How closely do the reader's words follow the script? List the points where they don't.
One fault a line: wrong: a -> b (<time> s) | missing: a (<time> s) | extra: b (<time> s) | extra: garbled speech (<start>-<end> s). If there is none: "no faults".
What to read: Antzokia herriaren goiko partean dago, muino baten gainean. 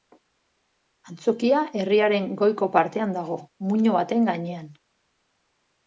no faults